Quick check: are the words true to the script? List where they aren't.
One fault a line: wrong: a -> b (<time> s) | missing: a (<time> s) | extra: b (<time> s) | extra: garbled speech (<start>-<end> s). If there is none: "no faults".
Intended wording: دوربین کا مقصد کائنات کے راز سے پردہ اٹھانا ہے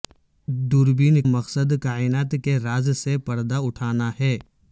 missing: کا (1.2 s)